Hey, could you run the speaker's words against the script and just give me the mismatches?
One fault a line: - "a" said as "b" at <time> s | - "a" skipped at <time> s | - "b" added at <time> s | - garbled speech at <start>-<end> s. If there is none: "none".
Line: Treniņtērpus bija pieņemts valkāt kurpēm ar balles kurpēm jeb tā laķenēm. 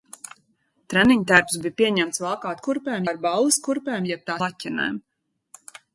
none